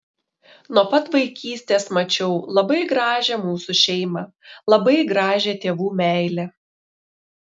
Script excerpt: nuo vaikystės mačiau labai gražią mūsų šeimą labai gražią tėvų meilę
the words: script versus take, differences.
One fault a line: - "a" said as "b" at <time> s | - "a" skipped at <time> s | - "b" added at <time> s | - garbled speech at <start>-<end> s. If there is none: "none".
- "pat" added at 0.9 s